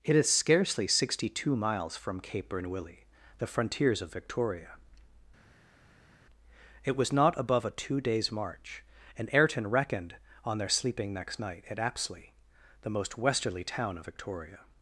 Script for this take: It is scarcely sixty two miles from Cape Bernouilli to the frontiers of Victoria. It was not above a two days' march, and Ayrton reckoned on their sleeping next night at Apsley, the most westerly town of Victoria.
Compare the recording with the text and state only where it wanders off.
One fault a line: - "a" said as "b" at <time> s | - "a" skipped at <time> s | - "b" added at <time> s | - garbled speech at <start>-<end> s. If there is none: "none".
- "to" skipped at 3.0 s